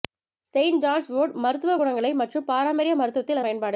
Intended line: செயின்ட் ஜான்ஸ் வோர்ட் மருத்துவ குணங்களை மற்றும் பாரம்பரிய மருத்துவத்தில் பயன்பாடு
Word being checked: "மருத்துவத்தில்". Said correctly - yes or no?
yes